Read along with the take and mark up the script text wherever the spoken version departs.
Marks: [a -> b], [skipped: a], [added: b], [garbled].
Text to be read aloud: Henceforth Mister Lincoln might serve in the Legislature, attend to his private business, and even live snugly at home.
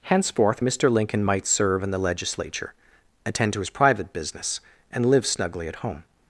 Henceforth Mister Lincoln might serve in the Legislature, attend to his private business, and [skipped: even] live snugly at home.